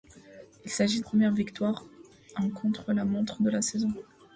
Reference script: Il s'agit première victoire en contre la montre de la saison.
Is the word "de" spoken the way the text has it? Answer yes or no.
yes